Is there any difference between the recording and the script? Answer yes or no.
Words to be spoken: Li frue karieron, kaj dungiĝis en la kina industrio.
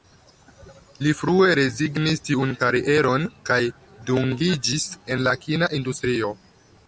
yes